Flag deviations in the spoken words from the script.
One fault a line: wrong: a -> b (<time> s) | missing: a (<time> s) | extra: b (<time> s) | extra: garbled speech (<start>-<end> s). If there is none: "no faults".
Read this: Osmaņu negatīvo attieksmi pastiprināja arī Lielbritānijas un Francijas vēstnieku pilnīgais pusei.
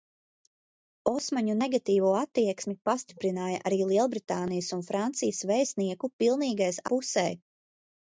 no faults